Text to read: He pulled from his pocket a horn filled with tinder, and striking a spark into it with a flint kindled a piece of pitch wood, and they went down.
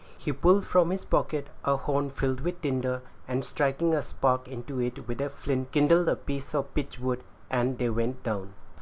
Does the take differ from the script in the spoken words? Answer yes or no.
no